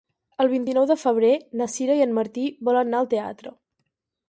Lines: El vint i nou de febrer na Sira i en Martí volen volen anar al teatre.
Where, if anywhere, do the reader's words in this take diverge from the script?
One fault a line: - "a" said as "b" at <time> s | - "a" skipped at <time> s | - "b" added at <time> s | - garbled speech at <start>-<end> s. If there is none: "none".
- "volen" skipped at 2.9 s